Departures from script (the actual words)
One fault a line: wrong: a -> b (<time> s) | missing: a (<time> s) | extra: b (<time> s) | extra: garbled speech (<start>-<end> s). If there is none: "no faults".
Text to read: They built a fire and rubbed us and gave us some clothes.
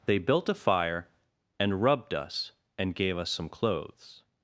no faults